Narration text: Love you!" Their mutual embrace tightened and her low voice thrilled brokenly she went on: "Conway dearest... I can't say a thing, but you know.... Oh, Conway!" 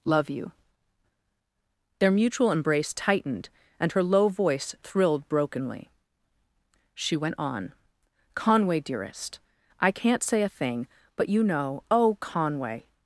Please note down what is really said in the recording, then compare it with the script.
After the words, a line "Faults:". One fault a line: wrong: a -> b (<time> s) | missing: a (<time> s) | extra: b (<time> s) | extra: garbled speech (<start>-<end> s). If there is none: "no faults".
Love you!" Their mutual embrace tightened and her low voice thrilled brokenly she went on: "Conway dearest... I can't say a thing, but you know.... Oh, Conway!"
Faults:
no faults